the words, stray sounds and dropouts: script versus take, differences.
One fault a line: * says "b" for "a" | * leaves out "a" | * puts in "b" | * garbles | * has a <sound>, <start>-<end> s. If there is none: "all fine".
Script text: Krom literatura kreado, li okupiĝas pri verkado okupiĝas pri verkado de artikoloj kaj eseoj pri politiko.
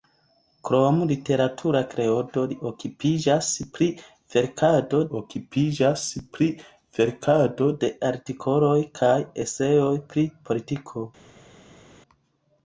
all fine